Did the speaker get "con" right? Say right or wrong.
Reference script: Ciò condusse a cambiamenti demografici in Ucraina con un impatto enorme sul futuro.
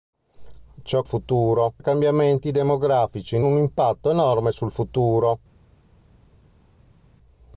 wrong